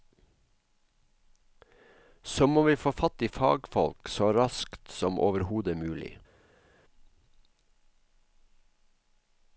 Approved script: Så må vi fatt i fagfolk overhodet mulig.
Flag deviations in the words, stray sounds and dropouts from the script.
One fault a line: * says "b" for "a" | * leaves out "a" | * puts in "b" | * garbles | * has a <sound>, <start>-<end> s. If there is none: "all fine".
* puts in "få"
* puts in "så raskt som"